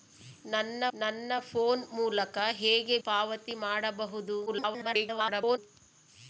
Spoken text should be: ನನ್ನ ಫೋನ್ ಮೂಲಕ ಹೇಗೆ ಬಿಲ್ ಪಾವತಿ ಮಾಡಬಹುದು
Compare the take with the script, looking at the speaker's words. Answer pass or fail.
fail